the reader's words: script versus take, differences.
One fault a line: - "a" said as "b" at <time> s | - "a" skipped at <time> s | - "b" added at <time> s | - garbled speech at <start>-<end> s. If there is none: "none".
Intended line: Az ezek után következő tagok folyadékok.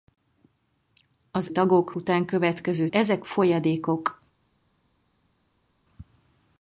- "ezek" said as "tagok" at 1.5 s
- "tagok" said as "ezek" at 2.9 s